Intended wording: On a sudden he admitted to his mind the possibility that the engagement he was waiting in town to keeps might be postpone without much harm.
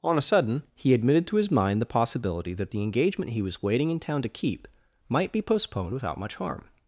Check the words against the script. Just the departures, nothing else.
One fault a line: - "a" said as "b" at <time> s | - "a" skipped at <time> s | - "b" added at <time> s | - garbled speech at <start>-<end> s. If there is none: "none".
- "keeps" said as "keep" at 4.3 s
- "postpone" said as "postponed" at 5.4 s